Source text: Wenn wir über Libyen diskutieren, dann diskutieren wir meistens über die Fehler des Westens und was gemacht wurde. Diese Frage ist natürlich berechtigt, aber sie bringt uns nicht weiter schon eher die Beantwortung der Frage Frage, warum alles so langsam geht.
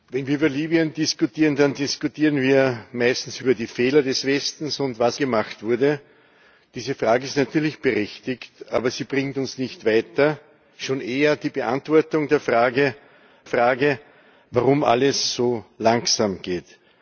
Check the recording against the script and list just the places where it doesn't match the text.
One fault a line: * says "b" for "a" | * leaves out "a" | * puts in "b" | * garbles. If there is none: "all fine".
all fine